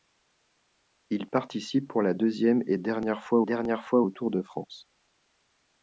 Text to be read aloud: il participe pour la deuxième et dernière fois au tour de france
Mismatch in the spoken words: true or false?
true